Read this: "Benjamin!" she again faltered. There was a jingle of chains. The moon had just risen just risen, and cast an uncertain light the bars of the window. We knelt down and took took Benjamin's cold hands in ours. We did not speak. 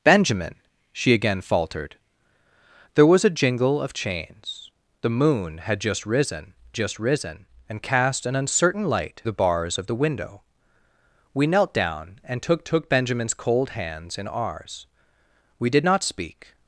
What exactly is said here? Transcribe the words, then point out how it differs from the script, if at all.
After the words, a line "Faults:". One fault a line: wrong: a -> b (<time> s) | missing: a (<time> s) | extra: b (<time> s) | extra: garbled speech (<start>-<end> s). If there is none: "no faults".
"Benjamin!" she again faltered. There was a jingle of chains. The moon had just risen just risen, and cast an uncertain light the bars of the window. We knelt down and took took Benjamin's cold hands in ours. We did not speak.
Faults:
no faults